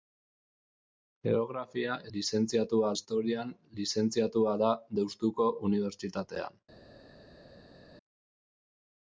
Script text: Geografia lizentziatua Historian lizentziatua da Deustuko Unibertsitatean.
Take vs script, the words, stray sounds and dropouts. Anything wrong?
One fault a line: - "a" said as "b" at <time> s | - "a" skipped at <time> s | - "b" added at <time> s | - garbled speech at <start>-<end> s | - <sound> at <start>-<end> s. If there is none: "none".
none